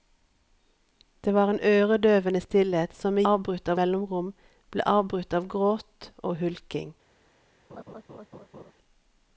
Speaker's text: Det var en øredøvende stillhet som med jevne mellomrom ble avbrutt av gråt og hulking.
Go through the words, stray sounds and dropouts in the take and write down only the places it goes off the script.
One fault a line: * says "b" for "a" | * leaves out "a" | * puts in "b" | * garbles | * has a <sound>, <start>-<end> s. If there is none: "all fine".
* says "avbrutt" for "jevne"
* has a laugh, 7.7-8.7 s